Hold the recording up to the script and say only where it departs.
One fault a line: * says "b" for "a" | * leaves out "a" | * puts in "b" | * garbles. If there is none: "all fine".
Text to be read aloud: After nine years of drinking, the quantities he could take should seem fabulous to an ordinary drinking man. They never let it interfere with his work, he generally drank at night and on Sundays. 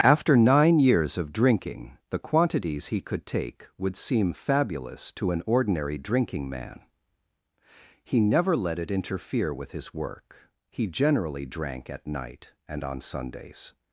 * says "would" for "should"
* says "He" for "They"